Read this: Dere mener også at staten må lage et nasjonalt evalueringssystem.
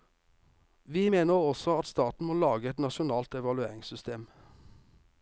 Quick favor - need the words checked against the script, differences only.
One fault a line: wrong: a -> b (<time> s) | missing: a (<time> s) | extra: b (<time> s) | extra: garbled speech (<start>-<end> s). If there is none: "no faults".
wrong: Dere -> Vi (0.8 s)